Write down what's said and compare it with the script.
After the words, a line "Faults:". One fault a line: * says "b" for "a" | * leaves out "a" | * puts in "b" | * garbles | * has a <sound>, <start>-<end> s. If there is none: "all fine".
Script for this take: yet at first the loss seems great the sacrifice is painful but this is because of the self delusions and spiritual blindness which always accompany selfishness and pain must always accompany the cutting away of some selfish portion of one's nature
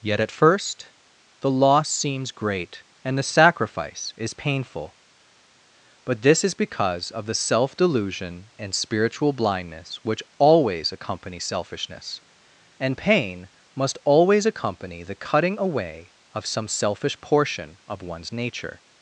yet at first the loss seems great and the sacrifice is painful but this is because of the self delusion and spiritual blindness which always accompany selfishness and pain must always accompany the cutting away of some selfish portion of one's nature
Faults:
* puts in "and"
* says "delusion" for "delusions"